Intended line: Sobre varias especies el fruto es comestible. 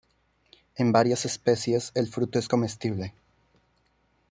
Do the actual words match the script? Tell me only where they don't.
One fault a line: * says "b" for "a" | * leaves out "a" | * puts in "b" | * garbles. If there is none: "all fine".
* says "En" for "Sobre"